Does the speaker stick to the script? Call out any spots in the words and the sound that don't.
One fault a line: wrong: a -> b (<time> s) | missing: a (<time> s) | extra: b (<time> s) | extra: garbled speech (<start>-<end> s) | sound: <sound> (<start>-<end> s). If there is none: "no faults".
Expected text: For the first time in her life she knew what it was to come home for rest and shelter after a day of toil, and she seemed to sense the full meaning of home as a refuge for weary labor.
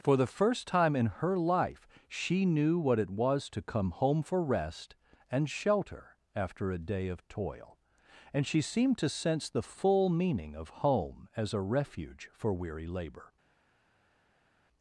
no faults